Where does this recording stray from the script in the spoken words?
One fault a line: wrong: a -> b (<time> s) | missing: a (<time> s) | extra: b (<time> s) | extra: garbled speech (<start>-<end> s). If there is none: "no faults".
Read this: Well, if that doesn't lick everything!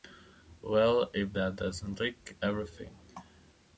no faults